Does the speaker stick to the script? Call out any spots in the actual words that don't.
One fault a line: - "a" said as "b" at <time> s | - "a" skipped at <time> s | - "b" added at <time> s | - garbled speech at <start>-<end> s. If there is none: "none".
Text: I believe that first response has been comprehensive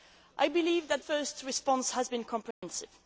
none